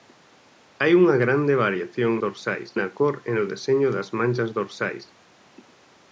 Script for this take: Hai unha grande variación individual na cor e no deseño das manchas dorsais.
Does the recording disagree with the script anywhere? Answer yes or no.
yes